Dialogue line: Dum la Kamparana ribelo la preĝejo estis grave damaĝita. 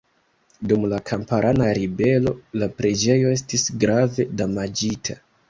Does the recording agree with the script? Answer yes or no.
yes